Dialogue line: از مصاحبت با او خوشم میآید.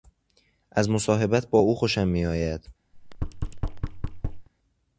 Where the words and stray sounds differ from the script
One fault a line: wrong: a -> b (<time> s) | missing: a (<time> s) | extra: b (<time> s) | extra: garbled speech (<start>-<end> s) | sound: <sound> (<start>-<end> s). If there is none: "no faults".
sound: thud (2.9-4.5 s)